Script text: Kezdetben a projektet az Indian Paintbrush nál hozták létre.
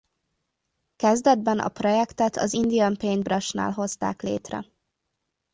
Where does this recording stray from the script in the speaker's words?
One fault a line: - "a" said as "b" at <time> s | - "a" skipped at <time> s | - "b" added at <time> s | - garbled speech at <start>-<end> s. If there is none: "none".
none